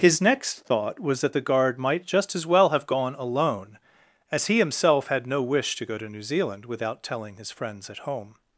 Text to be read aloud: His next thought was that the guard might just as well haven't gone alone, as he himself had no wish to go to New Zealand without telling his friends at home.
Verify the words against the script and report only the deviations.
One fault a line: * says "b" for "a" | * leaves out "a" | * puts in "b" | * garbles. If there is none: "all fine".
* says "have" for "haven't"